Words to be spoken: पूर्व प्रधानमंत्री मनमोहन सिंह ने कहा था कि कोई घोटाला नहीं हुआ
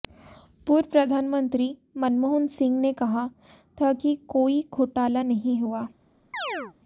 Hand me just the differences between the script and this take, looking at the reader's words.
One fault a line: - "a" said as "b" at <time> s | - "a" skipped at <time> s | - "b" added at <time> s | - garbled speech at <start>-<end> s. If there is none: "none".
none